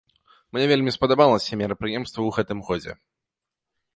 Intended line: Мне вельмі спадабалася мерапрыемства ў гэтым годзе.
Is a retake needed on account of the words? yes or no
no